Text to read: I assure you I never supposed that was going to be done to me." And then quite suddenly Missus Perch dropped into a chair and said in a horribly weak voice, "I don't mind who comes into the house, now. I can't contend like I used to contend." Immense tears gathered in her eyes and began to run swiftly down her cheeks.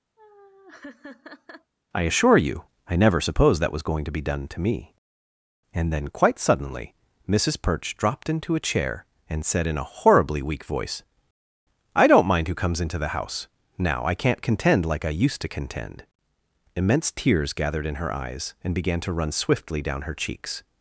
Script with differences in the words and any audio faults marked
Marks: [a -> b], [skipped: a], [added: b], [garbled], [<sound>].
[laugh] I assure you I never supposed that was going to be done to me." And then quite suddenly Missus Perch dropped into a chair and said in a horribly weak voice, "I don't mind who comes into the house, now. I can't contend like I used to contend." Immense tears gathered in her eyes and began to run swiftly down her cheeks.